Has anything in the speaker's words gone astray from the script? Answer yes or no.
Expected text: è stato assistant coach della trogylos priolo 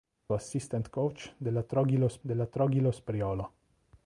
yes